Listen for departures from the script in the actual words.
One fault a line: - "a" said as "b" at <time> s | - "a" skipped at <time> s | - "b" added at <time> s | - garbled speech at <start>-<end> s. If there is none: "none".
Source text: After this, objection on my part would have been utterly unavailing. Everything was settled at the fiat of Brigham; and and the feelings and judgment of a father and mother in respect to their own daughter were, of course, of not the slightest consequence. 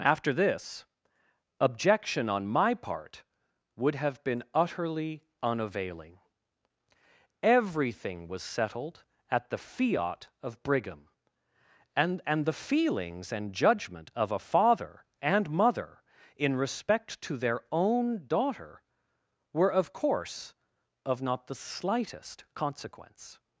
none